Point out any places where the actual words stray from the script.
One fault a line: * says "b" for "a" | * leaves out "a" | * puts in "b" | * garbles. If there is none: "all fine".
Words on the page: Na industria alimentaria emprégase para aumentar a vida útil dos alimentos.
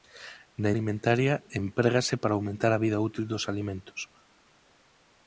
* leaves out "industria"